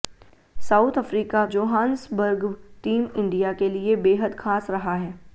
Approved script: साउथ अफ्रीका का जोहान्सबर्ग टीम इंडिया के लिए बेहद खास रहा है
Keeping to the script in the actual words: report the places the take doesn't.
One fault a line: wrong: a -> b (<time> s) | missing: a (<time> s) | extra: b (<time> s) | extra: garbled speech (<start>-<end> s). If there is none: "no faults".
missing: का (1.4 s)